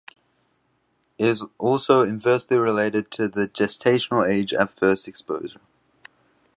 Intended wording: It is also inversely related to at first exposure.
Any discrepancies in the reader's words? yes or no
yes